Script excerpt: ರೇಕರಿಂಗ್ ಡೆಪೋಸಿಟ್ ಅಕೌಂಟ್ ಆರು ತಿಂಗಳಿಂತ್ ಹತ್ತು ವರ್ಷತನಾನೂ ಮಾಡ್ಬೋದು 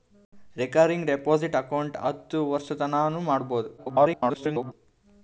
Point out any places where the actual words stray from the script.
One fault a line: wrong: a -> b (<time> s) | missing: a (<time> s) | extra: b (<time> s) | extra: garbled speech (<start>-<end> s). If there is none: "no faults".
missing: ಆರು ತಿಂಗಳಿಂತ್ (2.0 s)
extra: garbled speech (3.8-4.7 s)